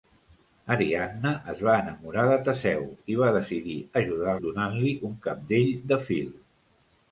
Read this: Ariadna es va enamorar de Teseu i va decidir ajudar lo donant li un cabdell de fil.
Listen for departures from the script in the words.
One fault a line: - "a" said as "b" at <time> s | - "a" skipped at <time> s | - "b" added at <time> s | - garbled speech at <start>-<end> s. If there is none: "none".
- "lo" skipped at 4.3 s